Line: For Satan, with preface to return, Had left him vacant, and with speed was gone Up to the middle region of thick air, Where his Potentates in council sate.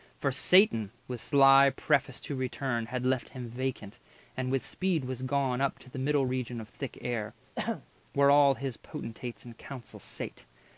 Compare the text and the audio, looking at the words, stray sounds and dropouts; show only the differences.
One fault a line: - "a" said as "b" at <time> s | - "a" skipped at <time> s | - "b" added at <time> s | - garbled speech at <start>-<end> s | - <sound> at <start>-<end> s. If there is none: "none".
- "sly" added at 1.2 s
- throat clearing at 7.6-7.9 s
- "all" added at 8.3 s